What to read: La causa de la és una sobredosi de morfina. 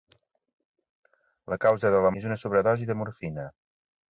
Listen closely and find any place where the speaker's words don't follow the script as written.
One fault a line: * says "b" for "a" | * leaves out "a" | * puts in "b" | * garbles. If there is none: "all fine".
all fine